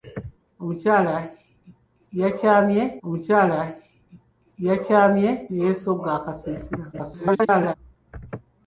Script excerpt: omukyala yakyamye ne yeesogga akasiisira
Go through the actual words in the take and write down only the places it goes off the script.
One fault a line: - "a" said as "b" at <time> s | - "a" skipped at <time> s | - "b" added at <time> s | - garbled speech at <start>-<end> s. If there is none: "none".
- "omukyala yakyamye" added at 3.0 s
- garbled speech at 6.9-7.7 s